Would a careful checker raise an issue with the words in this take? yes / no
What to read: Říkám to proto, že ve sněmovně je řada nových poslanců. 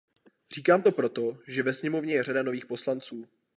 no